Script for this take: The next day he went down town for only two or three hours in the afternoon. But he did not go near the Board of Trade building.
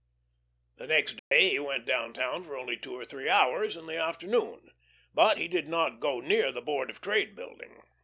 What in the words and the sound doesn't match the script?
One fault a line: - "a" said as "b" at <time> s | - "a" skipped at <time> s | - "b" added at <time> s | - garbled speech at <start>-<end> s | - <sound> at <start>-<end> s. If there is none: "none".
- dropout at 1.2-1.3 s